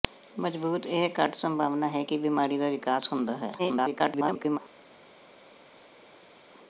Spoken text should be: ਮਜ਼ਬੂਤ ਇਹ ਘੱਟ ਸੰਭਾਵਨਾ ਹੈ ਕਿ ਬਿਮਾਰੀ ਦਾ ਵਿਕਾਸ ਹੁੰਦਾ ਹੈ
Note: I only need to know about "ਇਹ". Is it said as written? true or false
true